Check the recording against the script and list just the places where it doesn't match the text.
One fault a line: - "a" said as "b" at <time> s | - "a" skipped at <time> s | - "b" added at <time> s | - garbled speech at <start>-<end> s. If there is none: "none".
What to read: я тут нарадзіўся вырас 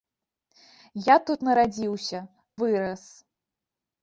none